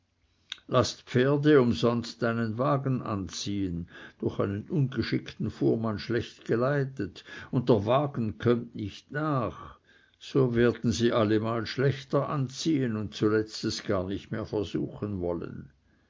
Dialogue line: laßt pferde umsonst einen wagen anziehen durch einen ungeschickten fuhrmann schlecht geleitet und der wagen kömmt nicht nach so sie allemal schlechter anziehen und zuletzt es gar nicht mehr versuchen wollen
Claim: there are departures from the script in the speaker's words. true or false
true